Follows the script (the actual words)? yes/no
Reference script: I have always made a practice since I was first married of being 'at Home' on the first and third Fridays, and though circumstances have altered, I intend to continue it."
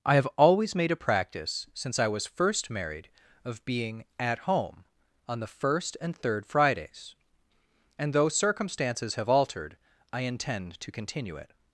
yes